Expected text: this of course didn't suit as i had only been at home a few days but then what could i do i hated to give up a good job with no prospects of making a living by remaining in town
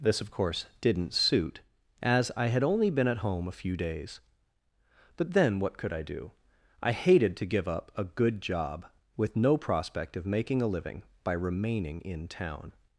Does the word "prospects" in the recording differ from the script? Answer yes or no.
yes